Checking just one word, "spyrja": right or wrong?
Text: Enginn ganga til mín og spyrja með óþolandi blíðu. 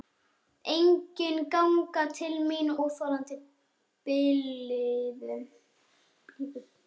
wrong